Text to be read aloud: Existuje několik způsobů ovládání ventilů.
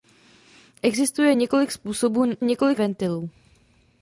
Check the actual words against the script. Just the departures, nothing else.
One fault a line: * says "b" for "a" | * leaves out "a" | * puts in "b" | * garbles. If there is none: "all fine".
* says "několik" for "ovládání"